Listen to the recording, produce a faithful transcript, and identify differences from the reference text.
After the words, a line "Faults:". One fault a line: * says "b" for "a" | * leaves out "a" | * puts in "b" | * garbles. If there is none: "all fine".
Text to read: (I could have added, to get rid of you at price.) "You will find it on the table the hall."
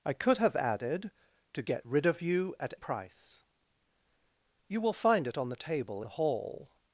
(I could have added, to get rid of you at price.) "You will find it on the table the hall."
Faults:
all fine